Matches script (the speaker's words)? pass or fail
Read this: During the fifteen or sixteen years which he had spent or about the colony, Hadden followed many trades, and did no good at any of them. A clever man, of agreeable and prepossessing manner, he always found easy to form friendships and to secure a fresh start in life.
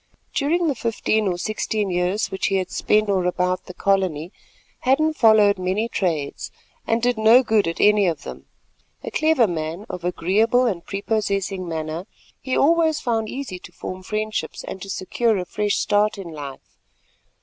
pass